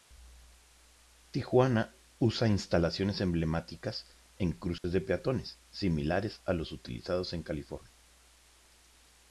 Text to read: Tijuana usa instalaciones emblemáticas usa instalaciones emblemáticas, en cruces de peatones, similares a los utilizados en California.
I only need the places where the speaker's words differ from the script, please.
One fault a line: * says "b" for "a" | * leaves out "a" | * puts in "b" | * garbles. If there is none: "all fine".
* leaves out "usa instalaciones emblemáticas"